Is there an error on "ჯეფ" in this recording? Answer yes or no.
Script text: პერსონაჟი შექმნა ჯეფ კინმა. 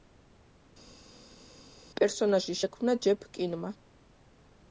no